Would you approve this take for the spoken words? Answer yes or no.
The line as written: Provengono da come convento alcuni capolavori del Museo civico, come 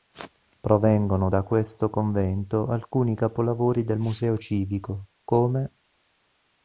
no